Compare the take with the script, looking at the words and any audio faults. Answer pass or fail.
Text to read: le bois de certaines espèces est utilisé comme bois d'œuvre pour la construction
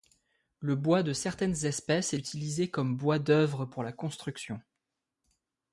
fail